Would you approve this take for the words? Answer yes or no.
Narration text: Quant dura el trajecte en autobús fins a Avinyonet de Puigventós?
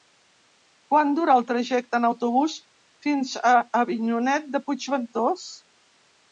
yes